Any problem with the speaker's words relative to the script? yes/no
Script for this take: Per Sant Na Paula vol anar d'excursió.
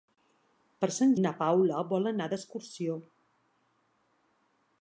no